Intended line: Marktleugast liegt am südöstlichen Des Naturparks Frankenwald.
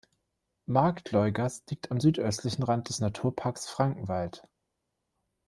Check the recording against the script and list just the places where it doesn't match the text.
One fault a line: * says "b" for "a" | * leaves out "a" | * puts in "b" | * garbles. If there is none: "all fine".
* puts in "Rand"